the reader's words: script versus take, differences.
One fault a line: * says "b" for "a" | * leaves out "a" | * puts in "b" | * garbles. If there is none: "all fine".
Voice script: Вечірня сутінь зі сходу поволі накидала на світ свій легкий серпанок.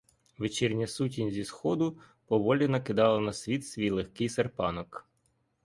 all fine